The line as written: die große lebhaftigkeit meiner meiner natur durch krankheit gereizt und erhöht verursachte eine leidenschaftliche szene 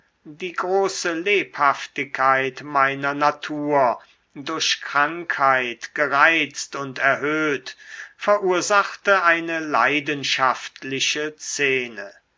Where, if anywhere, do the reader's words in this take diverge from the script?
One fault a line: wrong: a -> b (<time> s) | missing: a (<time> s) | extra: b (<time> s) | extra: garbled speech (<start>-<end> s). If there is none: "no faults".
missing: meiner (3.1 s)